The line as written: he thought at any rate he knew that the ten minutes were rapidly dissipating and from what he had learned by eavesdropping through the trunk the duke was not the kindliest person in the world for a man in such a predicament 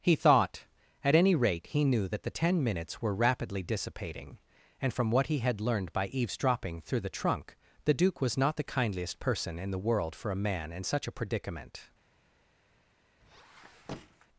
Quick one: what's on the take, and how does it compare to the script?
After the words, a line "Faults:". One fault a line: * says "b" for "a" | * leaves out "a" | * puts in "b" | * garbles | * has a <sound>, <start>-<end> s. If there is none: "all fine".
he thought at any rate he knew that the ten minutes were rapidly dissipating and from what he had learned by eavesdropping through the trunk the duke was not the kindliest person in the world for a man in such a predicament
Faults:
* has a squeak, 13.2-14.3 s